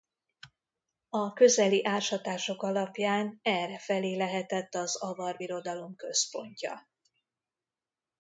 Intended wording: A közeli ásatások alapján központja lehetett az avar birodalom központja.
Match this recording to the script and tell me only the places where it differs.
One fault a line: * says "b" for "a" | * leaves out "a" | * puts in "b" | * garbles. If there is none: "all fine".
* says "errefelé" for "központja"